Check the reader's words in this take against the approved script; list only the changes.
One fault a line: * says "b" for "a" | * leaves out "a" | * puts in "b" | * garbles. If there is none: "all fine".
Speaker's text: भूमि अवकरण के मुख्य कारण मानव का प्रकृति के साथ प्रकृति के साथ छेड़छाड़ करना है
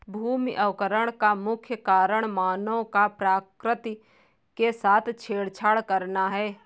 * says "का" for "के"
* leaves out "प्रकृति के साथ"